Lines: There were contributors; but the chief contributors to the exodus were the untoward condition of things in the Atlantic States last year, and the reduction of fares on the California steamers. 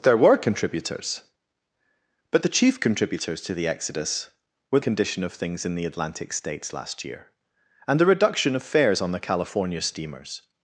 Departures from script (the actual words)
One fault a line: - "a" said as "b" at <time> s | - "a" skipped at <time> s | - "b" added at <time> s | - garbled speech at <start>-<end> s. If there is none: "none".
- "the untoward" skipped at 4.8 s